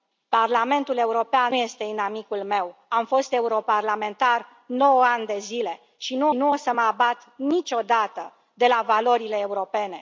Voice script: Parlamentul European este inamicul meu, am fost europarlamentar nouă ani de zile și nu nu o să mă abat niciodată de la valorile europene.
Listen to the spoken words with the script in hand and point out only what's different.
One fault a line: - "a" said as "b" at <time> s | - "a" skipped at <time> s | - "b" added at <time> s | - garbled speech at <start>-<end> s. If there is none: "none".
none